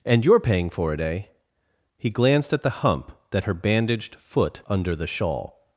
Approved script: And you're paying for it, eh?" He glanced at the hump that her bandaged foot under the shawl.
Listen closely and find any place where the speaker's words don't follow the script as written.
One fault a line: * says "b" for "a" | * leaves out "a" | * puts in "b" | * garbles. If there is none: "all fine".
all fine